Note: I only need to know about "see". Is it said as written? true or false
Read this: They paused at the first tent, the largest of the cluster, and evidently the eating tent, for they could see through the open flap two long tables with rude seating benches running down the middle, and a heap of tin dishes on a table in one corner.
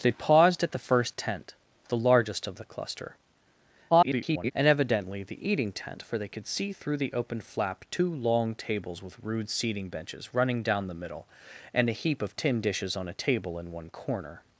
true